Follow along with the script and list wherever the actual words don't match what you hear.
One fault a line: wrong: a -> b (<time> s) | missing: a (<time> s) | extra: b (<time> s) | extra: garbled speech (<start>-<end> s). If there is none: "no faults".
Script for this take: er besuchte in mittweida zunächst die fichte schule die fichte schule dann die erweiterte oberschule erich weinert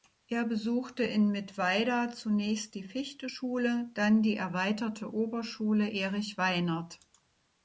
missing: die fichte schule (3.9 s)